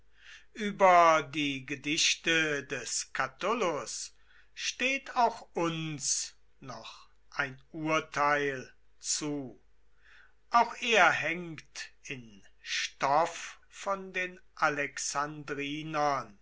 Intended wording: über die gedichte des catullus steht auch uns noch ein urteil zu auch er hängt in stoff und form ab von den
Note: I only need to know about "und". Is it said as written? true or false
false